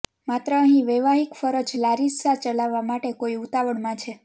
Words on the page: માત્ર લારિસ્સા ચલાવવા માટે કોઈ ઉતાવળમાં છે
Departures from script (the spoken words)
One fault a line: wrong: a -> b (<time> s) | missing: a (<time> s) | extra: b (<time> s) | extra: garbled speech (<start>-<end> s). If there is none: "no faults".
extra: અહીં વૈવાહિક ફરજ (0.6 s)